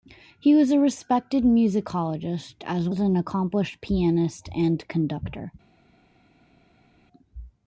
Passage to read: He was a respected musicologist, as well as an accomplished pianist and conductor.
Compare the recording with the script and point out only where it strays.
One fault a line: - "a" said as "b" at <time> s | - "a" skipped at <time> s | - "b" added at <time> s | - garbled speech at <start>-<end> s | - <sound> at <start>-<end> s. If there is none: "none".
- "well" skipped at 2.9 s